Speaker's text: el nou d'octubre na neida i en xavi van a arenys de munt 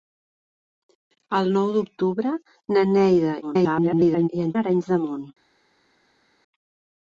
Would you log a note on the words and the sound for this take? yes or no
yes